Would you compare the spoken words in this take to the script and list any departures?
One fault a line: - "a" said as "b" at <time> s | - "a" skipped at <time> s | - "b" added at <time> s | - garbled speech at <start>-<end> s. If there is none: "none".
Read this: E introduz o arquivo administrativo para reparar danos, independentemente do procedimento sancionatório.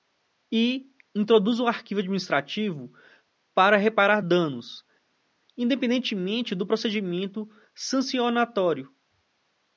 none